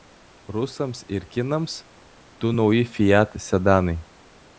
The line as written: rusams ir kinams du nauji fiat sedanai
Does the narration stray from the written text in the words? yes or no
no